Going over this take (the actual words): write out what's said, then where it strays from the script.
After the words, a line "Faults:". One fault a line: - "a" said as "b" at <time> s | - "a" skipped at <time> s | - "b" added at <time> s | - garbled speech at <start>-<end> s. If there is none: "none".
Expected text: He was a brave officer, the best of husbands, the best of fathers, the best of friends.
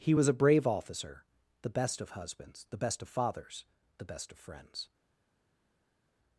He was a brave officer, the best of husbands, the best of fathers, the best of friends.
Faults:
none